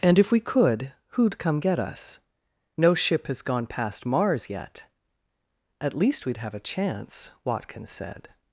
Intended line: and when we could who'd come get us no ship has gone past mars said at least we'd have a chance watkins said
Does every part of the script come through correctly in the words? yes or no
no